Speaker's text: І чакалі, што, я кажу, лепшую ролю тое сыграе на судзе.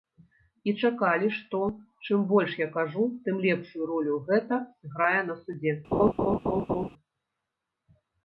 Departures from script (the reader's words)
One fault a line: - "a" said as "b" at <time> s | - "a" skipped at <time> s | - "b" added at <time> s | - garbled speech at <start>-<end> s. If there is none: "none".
- "чым больш" added at 2.1 s
- "тым" added at 3.3 s
- "тое" said as "гэта" at 4.3 s